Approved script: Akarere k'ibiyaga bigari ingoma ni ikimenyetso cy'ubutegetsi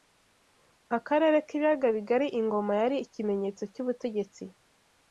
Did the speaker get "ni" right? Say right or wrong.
wrong